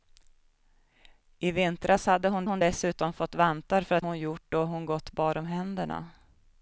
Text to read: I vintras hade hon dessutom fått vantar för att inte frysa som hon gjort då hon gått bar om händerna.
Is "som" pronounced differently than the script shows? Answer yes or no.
yes